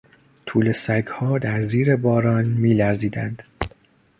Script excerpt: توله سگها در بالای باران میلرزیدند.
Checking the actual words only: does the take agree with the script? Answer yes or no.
no